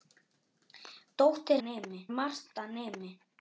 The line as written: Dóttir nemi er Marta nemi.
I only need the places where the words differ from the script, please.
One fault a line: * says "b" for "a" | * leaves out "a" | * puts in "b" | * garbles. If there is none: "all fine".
all fine